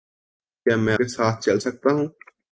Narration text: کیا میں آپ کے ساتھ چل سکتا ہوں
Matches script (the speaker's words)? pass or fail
fail